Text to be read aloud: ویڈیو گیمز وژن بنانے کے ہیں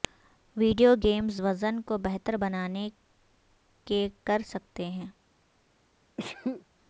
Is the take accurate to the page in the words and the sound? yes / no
no